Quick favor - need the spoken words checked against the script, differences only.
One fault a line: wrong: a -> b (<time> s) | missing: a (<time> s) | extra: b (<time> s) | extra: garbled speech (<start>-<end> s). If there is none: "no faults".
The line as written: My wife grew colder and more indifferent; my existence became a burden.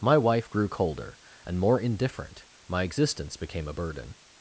no faults